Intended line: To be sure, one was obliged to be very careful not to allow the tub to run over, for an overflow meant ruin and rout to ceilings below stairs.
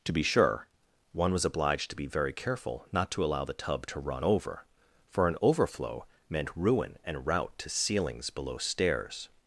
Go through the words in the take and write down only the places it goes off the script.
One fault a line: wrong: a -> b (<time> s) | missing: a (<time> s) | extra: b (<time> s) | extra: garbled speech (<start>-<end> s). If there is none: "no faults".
no faults